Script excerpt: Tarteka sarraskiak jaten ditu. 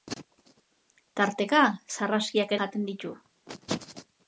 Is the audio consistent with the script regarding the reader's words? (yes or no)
yes